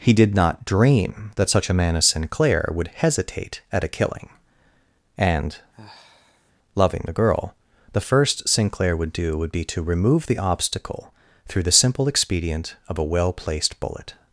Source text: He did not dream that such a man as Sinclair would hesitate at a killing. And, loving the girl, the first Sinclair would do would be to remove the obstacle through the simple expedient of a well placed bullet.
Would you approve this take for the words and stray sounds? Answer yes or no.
no